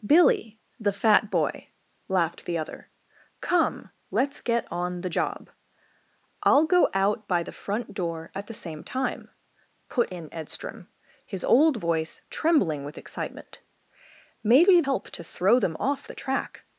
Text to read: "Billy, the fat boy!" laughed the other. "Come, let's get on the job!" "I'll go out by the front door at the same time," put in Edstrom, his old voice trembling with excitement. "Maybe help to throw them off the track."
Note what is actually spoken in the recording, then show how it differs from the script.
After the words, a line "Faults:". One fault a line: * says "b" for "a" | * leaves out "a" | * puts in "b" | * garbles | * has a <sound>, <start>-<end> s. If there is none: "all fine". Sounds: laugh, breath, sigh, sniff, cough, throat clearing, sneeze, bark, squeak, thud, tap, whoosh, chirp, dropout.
"Billy, the fat boy!" laughed the other. "Come, let's get on the job!" "I'll go out by the front door at the same time," put in Edstrom, his old voice trembling with excitement. "Maybe help to throw them off the track."
Faults:
all fine